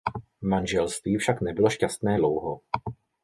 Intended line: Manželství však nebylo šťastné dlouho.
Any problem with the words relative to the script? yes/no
no